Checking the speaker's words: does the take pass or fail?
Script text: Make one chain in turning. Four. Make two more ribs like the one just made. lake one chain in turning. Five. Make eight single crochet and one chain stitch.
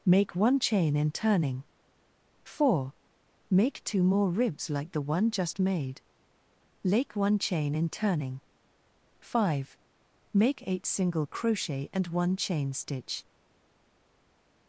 pass